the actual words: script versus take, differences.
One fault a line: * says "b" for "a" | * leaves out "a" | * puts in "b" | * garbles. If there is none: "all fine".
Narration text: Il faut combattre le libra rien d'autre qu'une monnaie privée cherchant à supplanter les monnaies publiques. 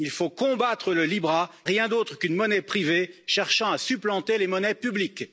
all fine